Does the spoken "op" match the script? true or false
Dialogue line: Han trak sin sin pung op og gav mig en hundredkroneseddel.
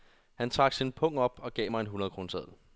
true